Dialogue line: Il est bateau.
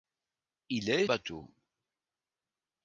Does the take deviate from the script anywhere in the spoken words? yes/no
no